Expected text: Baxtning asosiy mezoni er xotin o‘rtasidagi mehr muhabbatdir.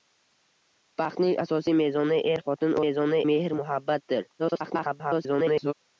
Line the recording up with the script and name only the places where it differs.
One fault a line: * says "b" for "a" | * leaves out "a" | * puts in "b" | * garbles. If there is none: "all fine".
* says "mezoni" for "o‘rtasidagi"
* garbles